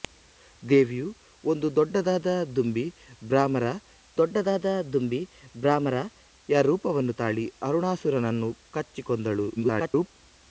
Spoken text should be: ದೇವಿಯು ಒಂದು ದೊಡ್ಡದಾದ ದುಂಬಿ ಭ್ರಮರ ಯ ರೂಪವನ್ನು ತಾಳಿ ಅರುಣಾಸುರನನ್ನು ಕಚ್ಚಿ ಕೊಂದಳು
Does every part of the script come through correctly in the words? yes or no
no